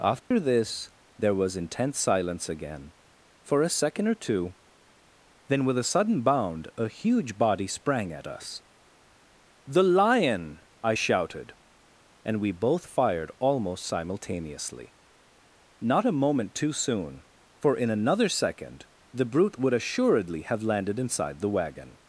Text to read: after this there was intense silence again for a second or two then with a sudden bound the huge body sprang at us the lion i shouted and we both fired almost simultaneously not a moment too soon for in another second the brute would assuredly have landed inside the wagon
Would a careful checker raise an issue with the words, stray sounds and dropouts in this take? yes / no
yes